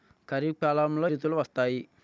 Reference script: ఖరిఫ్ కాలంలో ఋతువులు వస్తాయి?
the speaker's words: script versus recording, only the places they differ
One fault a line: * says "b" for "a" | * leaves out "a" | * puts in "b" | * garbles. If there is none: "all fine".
all fine